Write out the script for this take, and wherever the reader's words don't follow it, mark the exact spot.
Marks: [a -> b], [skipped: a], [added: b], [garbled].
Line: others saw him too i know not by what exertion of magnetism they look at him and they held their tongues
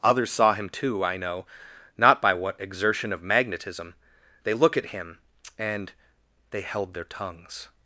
others saw him too i know not by what exertion of magnetism they look at him and they held their tongues